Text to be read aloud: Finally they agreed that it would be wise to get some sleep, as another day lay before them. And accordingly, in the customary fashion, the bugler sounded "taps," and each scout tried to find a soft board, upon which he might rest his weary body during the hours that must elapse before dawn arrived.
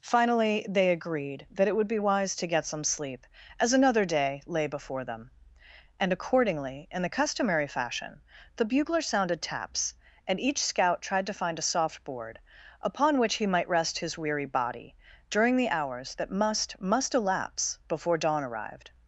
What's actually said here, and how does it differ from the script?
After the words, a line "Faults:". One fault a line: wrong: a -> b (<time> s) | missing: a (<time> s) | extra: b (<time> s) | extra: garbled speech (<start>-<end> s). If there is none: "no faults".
Finally they agreed that it would be wise to get some sleep, as another day lay before them. And accordingly, in the customary fashion, the bugler sounded "taps," and each scout tried to find a soft board, upon which he might rest his weary body during the hours that must must elapse before dawn arrived.
Faults:
extra: must (16.8 s)